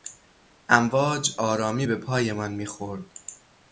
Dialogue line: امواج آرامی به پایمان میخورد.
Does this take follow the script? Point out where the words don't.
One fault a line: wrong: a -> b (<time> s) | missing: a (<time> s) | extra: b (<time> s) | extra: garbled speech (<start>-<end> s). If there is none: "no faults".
no faults